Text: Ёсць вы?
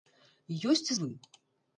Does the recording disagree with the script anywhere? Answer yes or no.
no